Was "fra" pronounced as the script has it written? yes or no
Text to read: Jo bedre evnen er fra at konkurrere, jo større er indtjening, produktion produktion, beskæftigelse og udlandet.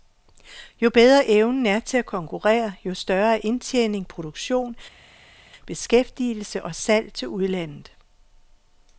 no